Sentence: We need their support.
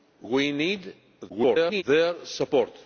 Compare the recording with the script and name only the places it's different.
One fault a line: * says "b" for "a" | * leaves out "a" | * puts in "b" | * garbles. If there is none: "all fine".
* garbles